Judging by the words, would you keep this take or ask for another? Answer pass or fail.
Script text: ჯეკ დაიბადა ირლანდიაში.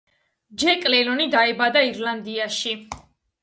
fail